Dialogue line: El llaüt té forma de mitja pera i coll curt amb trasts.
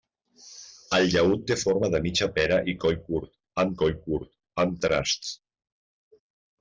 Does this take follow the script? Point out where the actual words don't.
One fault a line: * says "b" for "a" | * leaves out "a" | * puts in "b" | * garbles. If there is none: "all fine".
* puts in "coll curt amb"